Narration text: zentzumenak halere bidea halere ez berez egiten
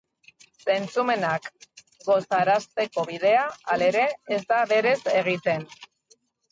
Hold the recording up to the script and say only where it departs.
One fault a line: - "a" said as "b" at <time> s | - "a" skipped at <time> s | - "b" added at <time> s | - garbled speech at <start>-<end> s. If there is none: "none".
- "halere" said as "gozarazteko" at 2.1 s
- "da" added at 4.5 s